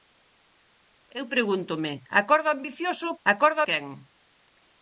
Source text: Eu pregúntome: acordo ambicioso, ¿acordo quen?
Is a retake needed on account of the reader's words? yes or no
no